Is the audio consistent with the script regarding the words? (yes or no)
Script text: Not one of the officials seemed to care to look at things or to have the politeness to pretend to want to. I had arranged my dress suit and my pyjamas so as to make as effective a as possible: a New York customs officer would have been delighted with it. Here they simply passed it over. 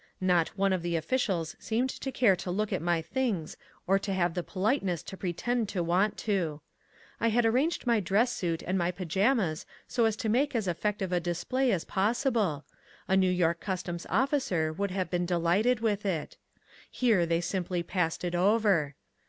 no